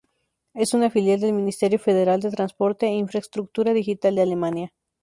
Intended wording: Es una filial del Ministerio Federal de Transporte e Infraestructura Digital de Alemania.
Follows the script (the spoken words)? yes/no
yes